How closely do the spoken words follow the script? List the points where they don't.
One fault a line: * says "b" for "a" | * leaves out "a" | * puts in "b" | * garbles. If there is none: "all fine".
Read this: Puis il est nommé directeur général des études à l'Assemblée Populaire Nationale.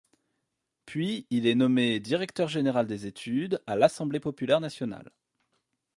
all fine